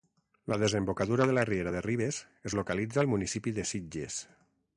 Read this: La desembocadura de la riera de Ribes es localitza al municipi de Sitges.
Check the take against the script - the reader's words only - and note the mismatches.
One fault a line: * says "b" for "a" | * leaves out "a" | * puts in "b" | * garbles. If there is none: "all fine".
all fine